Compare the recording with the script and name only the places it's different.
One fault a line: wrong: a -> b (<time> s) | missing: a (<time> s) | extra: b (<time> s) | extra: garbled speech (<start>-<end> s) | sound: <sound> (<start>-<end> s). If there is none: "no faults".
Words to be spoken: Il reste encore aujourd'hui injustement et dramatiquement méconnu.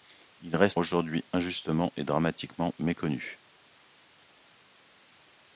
missing: encore (0.8 s)